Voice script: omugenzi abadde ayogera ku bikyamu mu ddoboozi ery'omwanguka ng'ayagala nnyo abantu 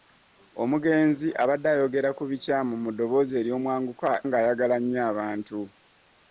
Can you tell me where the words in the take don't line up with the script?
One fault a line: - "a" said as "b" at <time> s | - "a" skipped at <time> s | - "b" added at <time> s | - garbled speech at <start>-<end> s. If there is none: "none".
none